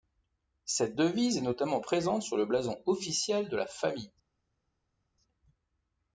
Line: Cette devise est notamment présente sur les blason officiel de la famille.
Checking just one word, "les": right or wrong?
wrong